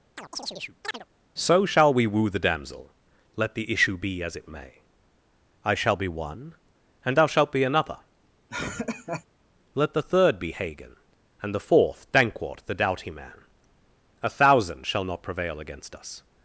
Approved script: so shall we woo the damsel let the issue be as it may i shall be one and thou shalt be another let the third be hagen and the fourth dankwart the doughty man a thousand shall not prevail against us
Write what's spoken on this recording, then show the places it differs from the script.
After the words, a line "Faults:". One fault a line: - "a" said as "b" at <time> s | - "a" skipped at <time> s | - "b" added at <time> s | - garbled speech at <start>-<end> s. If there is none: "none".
so shall we woo the damsel let the issue be as it may i shall be one and thou shalt be another let the third be hagen and the fourth dankwart the doughty man a thousand shall not prevail against us
Faults:
none